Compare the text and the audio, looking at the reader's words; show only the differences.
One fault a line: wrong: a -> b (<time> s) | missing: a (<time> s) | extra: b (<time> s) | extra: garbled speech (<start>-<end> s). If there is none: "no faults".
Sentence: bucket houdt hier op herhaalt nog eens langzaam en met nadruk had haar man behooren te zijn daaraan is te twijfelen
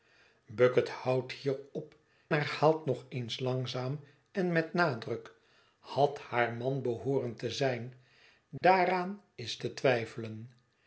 no faults